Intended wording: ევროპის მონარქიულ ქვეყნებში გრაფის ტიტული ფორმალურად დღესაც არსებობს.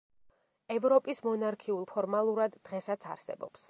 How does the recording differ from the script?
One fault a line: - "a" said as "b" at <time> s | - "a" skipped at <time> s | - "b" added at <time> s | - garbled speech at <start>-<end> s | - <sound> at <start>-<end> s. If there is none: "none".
- "ქვეყნებში გრაფის ტიტული" skipped at 1.9 s